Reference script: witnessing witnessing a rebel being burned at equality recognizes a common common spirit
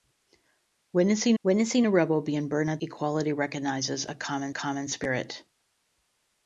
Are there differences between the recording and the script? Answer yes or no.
no